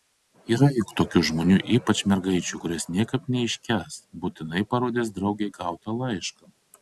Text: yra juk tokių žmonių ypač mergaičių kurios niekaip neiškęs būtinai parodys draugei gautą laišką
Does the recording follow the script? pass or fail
pass